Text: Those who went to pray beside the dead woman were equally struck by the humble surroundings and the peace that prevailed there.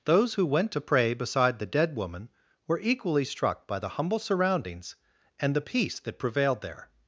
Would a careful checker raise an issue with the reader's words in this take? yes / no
no